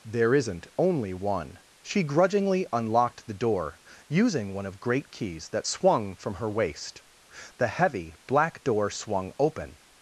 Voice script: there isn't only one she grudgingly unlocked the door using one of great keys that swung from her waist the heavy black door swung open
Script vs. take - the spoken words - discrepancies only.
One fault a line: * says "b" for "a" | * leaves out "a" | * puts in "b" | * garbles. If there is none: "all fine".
all fine